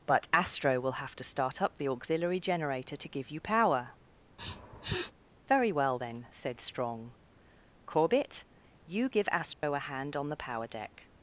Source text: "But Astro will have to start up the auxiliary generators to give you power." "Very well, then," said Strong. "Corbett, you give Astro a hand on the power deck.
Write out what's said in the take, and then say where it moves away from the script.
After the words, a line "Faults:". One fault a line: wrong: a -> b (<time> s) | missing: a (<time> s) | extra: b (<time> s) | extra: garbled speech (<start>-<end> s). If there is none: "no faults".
"But Astro will have to start up the auxiliary generator to give you power." "Very well, then," said Strong. "Corbett, you give Astro a hand on the power deck.
Faults:
wrong: generators -> generator (2.4 s)